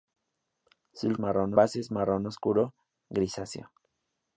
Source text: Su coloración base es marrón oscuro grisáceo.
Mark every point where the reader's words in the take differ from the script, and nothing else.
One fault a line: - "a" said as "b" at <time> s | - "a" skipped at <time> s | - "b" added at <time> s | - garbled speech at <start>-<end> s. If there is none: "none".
- "coloración" said as "marrón" at 1.2 s